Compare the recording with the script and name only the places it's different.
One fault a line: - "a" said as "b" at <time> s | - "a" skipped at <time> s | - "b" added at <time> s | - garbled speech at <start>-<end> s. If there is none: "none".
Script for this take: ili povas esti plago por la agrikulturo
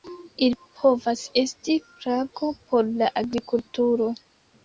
none